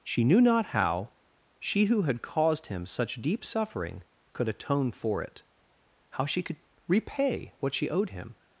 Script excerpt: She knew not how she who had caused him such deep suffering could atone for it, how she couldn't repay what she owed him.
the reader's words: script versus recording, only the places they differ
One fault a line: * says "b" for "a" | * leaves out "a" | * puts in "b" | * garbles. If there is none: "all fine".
* says "could" for "couldn't"